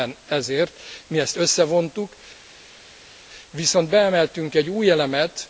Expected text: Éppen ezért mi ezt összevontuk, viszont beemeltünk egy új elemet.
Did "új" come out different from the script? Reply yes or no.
no